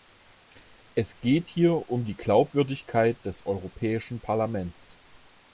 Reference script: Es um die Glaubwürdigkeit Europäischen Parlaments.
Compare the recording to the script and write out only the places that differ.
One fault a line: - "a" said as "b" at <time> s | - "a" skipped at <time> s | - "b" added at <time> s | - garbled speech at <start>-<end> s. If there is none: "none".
- "geht hier" added at 1.2 s
- "des" added at 3.2 s